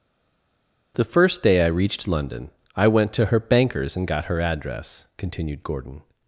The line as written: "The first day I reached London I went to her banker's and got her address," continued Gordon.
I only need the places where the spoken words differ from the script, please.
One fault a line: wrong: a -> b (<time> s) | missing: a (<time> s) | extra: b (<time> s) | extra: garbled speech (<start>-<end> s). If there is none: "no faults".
no faults